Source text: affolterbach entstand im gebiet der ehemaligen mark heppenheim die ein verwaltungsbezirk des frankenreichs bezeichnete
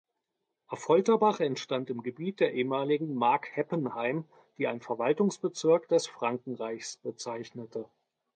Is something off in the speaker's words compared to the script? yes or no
no